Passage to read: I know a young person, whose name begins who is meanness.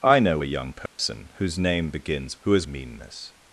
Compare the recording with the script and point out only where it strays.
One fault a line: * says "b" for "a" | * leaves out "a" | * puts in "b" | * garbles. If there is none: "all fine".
all fine